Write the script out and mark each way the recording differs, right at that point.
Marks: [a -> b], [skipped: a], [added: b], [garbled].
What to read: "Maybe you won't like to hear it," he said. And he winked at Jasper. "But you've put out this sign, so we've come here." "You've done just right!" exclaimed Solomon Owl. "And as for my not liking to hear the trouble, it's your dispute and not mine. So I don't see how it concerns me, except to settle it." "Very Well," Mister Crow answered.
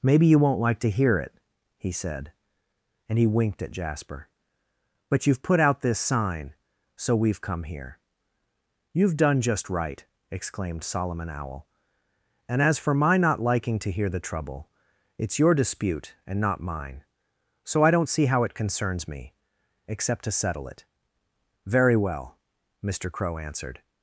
"Maybe you won't like to hear it," he said. And he winked at Jasper. "But you've put out this sign, so we've come here." "You've done just right!" exclaimed Solomon Owl. "And as for my not liking to hear the trouble, it's your dispute and not mine. So I don't see how it concerns me, except to settle it." "Very Well," Mister Crow answered.